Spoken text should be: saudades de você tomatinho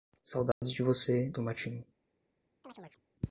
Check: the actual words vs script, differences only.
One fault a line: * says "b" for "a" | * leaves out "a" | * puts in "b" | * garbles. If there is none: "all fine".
all fine